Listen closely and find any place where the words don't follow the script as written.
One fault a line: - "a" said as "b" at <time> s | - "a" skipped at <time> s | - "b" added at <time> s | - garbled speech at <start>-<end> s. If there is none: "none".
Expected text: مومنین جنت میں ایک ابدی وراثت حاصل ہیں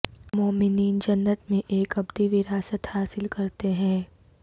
- "کرتے" added at 3.3 s